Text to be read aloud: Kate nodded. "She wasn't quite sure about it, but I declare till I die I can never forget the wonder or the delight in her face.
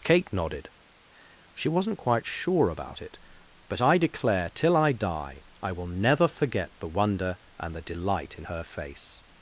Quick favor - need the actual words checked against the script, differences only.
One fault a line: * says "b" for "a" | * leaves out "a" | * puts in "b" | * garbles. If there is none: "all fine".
* says "will" for "can"
* says "and" for "or"